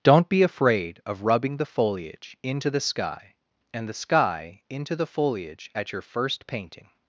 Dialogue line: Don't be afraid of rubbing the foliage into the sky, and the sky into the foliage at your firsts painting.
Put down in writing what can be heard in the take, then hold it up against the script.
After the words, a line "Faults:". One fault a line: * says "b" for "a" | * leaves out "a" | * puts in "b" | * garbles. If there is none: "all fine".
Don't be afraid of rubbing the foliage into the sky, and the sky into the foliage at your first painting.
Faults:
* says "first" for "firsts"